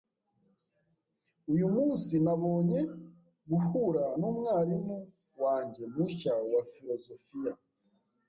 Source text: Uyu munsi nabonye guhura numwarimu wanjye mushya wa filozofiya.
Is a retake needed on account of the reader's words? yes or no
no